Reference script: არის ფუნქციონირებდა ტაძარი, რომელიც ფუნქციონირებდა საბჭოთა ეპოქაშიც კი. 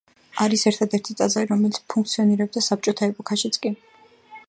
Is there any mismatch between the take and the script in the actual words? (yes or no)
yes